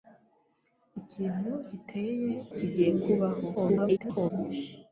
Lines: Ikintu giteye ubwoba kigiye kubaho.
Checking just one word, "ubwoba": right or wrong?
wrong